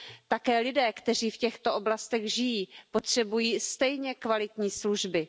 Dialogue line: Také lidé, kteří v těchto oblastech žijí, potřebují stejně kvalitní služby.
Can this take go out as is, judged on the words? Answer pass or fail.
pass